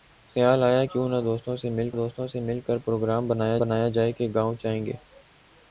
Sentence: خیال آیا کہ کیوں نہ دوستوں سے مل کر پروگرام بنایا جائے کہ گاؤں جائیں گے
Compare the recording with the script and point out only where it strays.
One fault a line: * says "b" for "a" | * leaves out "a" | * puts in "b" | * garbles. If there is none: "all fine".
* leaves out "کہ"
* puts in "دوستوں سے مل"
* puts in "بنایا"